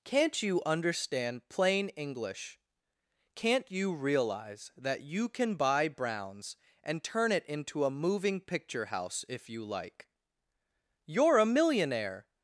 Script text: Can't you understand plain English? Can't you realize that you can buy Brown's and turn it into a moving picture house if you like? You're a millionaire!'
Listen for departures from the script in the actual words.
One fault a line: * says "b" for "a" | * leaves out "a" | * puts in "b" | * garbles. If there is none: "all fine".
all fine